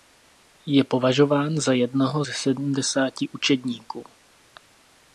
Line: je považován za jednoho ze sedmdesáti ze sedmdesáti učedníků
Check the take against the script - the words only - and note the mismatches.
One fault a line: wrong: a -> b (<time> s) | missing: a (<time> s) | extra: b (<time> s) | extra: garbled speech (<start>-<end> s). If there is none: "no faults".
missing: ze sedmdesáti (3.3 s)